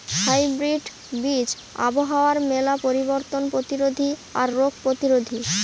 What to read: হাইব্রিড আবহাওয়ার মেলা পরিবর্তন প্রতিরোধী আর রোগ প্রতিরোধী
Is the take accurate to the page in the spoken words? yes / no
no